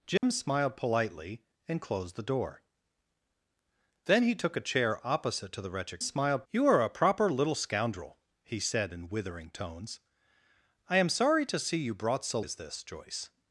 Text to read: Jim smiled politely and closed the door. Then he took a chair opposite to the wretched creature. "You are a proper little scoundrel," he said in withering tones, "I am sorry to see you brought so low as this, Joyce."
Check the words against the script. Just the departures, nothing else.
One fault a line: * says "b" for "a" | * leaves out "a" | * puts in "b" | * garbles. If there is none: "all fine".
* says "smiled" for "creature"
* leaves out "low"